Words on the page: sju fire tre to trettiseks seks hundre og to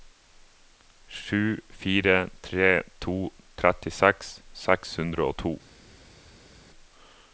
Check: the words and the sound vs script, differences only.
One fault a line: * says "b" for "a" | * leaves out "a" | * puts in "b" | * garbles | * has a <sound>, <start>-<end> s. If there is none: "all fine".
all fine